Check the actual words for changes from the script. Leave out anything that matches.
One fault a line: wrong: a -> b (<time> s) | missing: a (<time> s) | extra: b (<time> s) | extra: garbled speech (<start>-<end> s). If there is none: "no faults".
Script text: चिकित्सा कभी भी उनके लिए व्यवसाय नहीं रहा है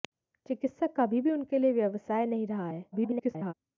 extra: garbled speech (2.9-3.5 s)